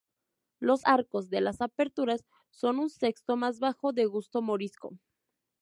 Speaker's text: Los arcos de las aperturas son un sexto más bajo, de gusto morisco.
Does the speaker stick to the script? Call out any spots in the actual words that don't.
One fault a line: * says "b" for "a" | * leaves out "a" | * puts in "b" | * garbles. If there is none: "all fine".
all fine